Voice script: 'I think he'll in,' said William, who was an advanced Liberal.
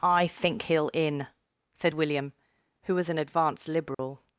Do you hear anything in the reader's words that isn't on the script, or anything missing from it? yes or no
no